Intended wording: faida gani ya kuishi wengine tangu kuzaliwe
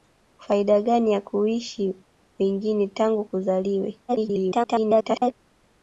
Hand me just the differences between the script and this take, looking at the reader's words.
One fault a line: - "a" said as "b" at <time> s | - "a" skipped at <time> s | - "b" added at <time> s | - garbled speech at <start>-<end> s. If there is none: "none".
- garbled speech at 4.1-5.3 s